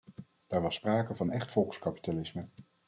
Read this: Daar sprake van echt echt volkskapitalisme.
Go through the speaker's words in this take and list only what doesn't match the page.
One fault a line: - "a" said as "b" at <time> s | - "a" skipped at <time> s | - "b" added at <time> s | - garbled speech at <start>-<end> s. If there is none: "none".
- "was" added at 0.6 s
- "echt" skipped at 1.5 s